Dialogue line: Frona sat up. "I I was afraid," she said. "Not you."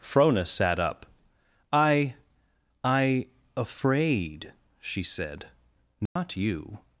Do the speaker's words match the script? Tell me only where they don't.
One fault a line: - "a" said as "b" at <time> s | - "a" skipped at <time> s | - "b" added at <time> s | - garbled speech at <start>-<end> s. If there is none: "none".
- "was" skipped at 3.3 s